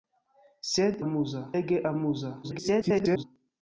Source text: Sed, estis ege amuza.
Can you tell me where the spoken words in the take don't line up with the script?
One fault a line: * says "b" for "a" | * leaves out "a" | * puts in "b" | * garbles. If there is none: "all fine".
* says "amuza" for "estis"
* garbles